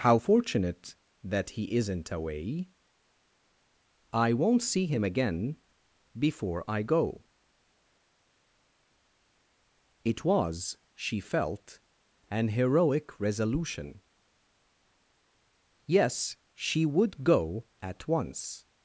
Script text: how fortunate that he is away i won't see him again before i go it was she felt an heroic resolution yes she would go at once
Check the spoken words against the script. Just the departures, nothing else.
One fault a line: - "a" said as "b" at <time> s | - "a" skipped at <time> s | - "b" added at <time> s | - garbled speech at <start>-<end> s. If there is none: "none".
- "is" said as "isn't" at 1.8 s